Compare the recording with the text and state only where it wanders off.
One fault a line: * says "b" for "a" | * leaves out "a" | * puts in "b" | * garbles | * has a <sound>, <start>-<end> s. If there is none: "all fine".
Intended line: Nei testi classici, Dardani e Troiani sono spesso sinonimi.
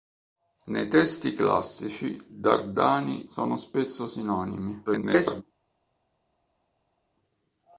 * leaves out "e Troiani"
* garbles